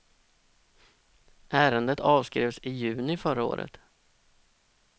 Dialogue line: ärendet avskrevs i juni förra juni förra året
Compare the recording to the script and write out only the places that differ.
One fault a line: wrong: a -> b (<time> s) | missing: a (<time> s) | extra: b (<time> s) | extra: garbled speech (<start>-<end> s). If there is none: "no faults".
missing: juni förra (3.4 s)